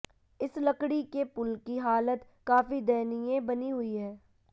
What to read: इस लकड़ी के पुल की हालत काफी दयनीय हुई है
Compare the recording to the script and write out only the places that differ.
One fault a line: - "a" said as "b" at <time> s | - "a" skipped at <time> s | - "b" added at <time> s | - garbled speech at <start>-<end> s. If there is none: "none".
- "बनी" added at 3.4 s